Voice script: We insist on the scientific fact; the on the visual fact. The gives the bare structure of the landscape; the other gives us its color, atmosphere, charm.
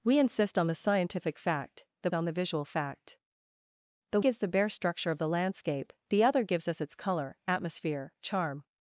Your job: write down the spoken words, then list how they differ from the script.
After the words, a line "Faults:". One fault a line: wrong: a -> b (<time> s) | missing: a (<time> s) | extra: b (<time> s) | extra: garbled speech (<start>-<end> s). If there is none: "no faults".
We insist on the scientific fact; the on the visual fact. The gives the bare structure of the landscape; the other gives us its color, atmosphere, charm.
Faults:
no faults